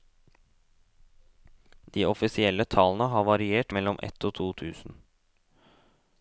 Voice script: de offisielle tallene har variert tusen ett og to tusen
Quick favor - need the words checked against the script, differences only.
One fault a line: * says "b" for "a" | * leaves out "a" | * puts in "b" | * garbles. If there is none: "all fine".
* says "mellom" for "tusen"